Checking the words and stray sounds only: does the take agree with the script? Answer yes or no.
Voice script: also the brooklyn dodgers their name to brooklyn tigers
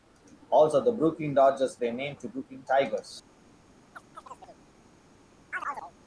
no